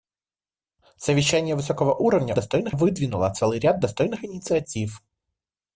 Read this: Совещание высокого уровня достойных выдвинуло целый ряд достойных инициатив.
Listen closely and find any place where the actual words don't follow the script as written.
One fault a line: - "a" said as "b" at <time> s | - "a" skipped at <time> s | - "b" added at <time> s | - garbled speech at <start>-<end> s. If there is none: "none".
none